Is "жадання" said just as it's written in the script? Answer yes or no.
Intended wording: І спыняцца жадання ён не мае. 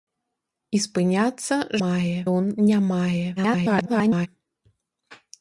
no